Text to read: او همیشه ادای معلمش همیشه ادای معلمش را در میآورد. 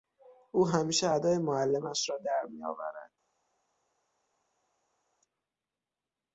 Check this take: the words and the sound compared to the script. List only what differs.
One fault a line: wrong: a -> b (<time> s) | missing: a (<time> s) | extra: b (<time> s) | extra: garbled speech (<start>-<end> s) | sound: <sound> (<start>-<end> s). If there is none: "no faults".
missing: همیشه ادای معلمش (2.1 s)